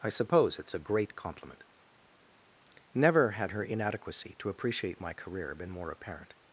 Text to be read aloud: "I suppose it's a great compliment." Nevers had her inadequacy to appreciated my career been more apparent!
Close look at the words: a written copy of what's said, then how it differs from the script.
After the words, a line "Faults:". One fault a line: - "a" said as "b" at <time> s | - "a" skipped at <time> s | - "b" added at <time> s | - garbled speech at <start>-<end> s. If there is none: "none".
"I suppose it's a great compliment." Never had her inadequacy to appreciate my career been more apparent!
Faults:
- "Nevers" said as "Never" at 2.9 s
- "appreciated" said as "appreciate" at 4.5 s